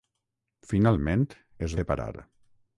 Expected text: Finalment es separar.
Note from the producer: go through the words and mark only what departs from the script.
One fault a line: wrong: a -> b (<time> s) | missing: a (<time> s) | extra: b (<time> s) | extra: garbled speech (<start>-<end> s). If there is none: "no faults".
no faults